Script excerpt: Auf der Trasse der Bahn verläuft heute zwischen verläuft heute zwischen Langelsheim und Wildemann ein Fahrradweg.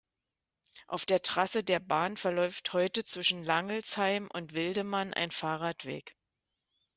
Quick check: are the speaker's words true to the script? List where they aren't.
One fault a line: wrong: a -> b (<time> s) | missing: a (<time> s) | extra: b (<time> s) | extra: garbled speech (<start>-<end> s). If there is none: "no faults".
missing: verläuft heute zwischen (3.4 s)